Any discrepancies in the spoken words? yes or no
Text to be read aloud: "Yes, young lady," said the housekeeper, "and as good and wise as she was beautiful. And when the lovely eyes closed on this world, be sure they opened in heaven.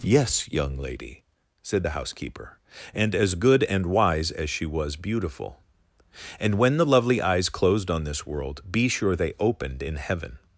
no